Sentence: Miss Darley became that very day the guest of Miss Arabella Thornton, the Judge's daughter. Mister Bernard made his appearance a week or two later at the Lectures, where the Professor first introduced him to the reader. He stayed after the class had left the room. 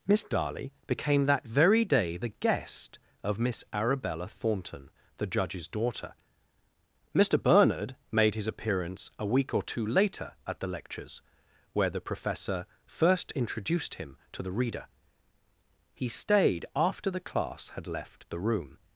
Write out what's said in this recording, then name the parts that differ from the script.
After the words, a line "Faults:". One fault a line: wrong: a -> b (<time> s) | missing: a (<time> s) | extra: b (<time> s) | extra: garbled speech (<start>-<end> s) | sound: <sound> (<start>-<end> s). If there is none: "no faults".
Miss Darley became that very day the guest of Miss Arabella Thornton, the Judge's daughter. Mister Bernard made his appearance a week or two later at the Lectures, where the Professor first introduced him to the reader. He stayed after the class had left the room.
Faults:
no faults